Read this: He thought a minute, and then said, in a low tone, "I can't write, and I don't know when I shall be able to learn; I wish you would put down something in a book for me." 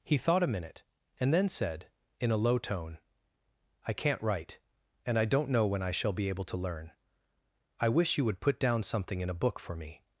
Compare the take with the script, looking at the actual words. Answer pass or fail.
pass